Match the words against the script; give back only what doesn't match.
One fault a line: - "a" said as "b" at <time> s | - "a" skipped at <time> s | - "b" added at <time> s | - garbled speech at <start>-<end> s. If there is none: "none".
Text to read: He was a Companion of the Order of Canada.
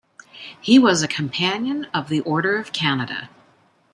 none